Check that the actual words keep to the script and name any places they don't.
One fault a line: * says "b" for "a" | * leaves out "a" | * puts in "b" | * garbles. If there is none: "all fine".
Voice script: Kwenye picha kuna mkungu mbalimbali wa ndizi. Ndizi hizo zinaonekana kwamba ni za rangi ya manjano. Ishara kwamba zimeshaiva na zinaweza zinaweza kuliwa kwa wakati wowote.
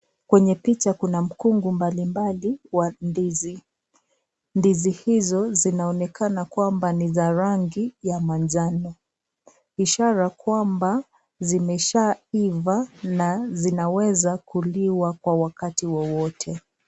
* leaves out "zinaweza"